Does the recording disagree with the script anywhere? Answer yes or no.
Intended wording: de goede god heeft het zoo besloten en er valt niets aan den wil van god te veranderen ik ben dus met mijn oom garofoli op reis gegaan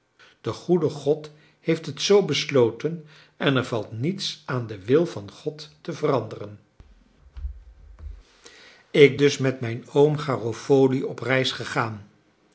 yes